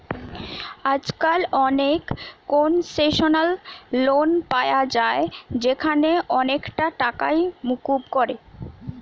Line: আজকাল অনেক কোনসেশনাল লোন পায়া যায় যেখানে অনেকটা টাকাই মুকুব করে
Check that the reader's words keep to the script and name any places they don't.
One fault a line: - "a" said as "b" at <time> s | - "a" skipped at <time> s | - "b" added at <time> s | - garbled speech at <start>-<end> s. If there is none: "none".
none